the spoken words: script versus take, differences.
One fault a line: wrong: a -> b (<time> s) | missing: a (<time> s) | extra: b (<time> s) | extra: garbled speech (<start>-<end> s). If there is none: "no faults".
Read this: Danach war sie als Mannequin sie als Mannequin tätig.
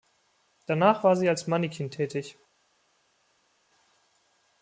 missing: sie als Mannequin (1.9 s)